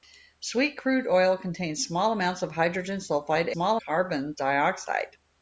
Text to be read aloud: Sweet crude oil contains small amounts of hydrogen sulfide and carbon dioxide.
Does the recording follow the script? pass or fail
fail